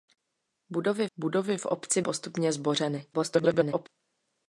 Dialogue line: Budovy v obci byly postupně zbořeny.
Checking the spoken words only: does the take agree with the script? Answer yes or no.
no